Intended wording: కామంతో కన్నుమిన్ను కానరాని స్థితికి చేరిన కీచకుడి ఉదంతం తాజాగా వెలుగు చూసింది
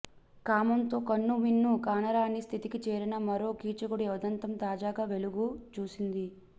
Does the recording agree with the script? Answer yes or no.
no